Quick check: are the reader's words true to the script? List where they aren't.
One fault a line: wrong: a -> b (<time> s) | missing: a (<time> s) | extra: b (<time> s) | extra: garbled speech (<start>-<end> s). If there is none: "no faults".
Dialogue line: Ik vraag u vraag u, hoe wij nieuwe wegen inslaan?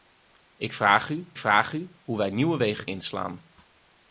no faults